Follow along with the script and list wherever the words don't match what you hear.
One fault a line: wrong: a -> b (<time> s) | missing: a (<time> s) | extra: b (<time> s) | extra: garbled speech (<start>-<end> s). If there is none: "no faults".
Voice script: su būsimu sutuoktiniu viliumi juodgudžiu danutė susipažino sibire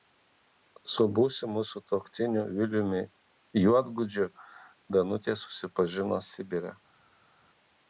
no faults